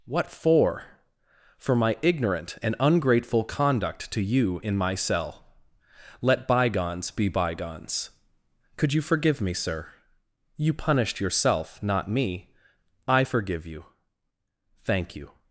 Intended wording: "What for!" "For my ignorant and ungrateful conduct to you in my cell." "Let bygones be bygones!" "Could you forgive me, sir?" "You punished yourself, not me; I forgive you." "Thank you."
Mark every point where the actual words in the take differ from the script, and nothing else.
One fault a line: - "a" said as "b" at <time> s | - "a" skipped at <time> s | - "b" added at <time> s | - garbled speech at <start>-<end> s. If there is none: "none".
none